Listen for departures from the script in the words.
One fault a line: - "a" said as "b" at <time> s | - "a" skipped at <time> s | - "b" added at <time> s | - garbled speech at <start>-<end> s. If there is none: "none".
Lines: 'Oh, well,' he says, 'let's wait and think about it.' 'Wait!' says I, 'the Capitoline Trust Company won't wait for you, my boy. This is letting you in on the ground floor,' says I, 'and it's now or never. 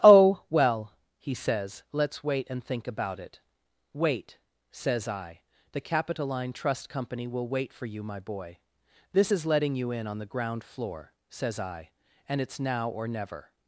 - "won't" said as "will" at 7.3 s